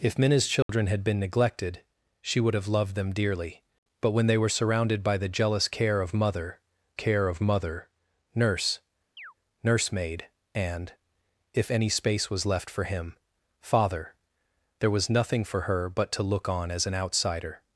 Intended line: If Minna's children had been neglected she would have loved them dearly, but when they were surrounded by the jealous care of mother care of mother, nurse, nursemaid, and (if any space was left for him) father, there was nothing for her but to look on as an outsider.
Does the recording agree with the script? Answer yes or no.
yes